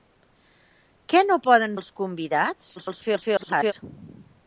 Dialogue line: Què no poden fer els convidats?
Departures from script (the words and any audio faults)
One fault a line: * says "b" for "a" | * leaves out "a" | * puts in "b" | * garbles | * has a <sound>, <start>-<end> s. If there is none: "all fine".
* leaves out "fer"
* garbles